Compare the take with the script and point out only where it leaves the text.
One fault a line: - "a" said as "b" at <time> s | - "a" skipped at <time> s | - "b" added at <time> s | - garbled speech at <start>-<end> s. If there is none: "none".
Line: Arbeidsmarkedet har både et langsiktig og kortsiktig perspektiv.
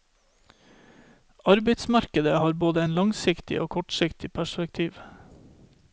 none